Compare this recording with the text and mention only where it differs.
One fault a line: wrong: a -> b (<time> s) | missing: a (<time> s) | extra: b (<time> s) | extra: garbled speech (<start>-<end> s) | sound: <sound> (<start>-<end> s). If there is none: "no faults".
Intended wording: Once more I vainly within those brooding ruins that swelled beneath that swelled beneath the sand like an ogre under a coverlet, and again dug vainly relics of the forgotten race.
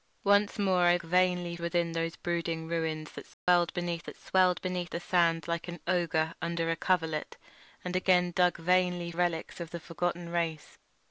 sound: dropout (3.3-3.5 s)